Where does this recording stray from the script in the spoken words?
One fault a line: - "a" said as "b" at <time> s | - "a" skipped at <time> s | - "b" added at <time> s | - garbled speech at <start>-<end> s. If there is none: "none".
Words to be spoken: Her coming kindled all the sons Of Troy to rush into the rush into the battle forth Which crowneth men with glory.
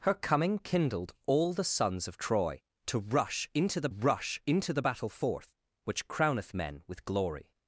none